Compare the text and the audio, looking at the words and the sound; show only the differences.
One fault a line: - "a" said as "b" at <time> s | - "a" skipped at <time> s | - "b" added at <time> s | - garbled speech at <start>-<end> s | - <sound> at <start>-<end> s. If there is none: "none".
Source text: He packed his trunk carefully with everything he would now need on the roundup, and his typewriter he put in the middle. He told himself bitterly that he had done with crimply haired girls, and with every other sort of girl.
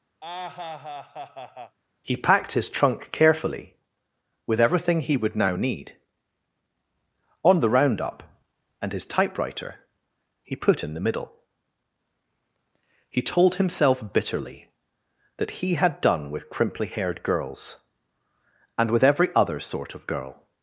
- laugh at 0.2-1.8 s